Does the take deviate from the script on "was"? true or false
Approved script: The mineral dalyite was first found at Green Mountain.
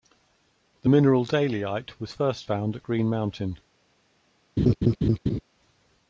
false